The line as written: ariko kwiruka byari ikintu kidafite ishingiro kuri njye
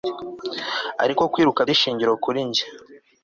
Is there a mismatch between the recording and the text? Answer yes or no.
yes